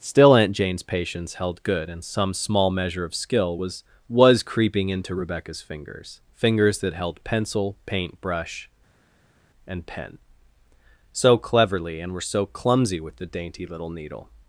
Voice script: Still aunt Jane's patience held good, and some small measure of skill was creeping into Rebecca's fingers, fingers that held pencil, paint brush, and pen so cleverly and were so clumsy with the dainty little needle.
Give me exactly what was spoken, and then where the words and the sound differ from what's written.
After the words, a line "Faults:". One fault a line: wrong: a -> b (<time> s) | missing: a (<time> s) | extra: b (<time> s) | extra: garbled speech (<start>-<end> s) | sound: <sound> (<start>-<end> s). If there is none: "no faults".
Still aunt Jane's patience held good, and some small measure of skill was was creeping into Rebecca's fingers, fingers that held pencil, paint brush, and pen so cleverly and were so clumsy with the dainty little needle.
Faults:
extra: was (4.1 s)